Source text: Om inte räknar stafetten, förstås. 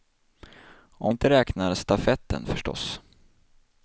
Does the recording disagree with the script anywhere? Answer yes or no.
no